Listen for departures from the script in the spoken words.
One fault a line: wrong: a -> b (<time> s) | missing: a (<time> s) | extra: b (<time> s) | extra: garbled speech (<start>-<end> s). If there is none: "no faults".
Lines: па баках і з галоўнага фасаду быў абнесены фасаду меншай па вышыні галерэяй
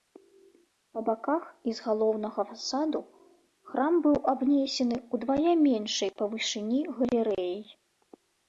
extra: храм (3.7 s)
wrong: фасаду -> ўдвая (5.2 s)